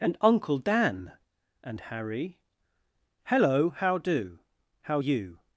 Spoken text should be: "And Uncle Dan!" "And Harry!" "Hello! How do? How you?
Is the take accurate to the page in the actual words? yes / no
yes